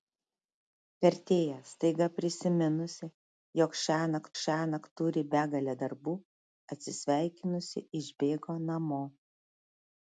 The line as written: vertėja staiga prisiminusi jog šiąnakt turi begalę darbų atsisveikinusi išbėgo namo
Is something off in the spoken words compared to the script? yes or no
yes